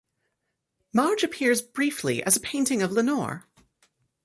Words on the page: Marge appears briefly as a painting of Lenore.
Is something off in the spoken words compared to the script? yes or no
no